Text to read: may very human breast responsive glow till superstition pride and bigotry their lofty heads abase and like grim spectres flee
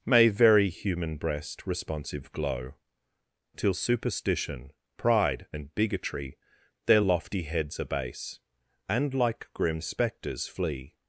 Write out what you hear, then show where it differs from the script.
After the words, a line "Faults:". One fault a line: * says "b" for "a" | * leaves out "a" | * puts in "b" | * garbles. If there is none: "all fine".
may very human breast responsive glow till superstition pride and bigotry their lofty heads abase and like grim spectres flee
Faults:
all fine